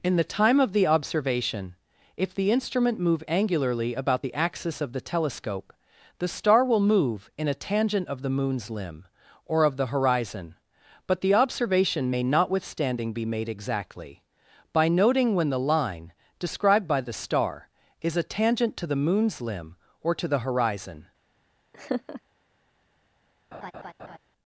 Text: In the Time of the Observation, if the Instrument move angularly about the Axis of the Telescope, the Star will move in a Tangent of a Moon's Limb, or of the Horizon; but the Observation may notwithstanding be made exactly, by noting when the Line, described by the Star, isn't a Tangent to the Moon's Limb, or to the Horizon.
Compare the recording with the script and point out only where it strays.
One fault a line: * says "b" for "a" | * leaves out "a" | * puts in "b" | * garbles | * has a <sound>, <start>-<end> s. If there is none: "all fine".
* says "the" for "a"
* says "is" for "isn't"
* has a laugh, 21.7-22.2 s
* has a laugh, 23.5-24.2 s